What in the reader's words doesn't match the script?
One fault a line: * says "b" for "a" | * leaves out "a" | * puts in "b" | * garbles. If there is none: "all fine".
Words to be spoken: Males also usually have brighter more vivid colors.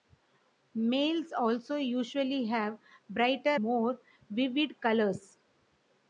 all fine